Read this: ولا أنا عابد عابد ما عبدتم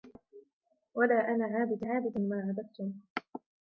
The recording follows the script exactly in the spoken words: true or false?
true